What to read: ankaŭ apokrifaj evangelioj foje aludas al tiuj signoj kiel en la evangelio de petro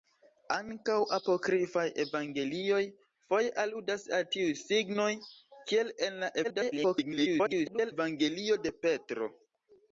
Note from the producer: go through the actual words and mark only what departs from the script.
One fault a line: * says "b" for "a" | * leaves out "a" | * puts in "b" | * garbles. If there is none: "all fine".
* garbles